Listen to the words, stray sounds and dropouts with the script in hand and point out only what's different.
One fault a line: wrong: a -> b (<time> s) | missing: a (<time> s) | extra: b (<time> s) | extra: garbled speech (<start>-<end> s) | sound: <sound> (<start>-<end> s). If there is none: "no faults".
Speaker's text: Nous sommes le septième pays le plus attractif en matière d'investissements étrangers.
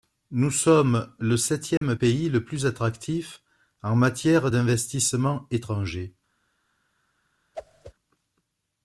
sound: dropout (1.8-1.8 s)
sound: whoosh (7.5-7.9 s)